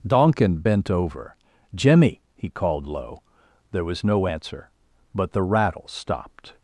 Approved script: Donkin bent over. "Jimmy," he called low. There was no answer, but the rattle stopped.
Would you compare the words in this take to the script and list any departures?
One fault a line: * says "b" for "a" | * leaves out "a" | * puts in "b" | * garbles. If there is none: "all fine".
all fine